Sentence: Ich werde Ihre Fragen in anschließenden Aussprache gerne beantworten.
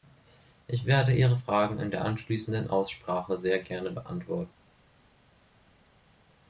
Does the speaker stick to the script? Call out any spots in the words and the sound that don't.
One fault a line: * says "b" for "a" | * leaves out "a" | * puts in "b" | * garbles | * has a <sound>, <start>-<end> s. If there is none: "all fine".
* puts in "der"
* puts in "sehr"